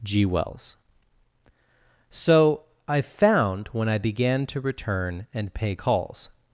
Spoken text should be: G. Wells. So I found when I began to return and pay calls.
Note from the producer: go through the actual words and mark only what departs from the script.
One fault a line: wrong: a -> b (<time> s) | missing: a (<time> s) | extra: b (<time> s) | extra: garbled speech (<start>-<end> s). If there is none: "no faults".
no faults